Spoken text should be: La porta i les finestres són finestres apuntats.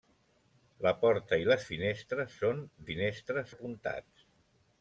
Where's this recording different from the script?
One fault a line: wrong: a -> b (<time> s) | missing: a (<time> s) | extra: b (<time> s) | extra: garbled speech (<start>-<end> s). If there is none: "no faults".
no faults